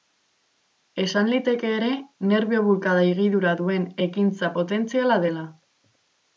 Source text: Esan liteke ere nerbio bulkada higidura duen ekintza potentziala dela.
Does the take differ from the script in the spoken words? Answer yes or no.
no